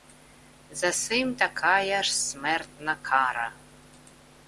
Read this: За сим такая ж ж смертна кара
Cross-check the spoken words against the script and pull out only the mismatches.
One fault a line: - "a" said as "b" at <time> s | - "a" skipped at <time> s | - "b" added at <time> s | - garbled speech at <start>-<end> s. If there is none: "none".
- "ж" skipped at 2.2 s